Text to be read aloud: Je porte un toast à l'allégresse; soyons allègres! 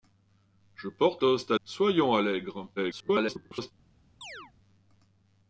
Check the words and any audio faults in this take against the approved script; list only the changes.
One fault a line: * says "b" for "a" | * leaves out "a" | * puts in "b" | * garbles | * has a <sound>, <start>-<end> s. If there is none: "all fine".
* leaves out "un"
* leaves out "l'allégresse"
* garbles
* has a chirp, 4.2-4.5 s